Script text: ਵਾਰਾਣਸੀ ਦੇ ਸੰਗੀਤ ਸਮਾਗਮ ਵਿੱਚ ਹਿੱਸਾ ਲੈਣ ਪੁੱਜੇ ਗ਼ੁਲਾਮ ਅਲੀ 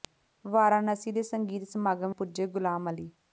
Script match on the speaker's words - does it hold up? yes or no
no